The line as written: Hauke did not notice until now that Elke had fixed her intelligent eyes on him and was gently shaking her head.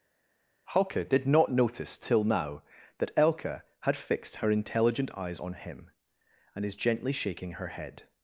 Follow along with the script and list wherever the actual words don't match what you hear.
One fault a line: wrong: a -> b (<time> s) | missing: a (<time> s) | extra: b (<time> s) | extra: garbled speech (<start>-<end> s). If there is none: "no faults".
wrong: until -> till (2.0 s)
wrong: was -> is (6.6 s)